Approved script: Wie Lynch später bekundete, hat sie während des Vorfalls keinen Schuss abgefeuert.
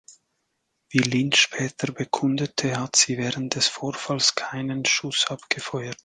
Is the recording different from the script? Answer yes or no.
no